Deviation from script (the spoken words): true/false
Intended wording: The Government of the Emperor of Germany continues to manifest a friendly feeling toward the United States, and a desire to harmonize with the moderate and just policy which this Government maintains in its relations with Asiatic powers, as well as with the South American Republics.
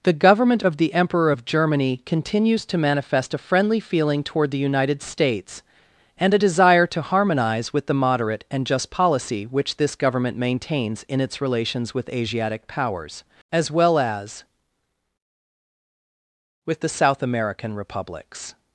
false